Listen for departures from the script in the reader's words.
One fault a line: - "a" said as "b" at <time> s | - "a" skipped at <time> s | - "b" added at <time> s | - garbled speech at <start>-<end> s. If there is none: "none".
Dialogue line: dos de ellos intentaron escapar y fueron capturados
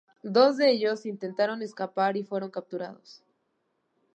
none